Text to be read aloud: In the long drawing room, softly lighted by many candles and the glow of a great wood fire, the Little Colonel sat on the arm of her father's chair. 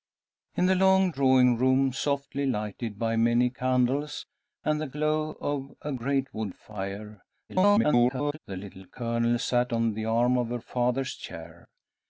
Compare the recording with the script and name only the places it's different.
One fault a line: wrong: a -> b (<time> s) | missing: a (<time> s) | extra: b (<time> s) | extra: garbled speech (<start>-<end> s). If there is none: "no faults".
extra: garbled speech (7.5-8.4 s)